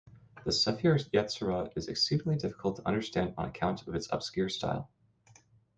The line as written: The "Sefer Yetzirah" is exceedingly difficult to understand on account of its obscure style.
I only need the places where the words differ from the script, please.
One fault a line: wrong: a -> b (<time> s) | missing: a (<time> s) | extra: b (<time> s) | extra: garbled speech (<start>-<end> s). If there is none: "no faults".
no faults